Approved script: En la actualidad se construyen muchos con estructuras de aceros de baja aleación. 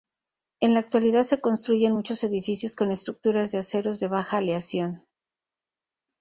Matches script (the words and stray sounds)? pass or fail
fail